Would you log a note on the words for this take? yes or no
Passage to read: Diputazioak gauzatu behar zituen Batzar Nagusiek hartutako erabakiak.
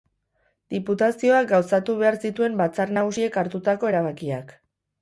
no